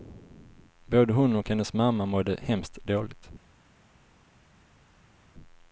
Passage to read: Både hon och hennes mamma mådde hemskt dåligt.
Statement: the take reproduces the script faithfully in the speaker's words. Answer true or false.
true